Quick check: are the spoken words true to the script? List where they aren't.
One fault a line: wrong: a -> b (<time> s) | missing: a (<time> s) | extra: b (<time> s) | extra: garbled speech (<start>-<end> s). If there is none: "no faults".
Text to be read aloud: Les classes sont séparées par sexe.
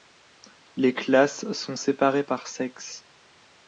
no faults